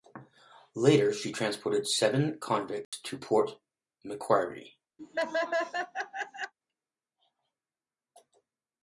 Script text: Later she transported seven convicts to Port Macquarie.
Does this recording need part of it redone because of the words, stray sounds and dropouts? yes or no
yes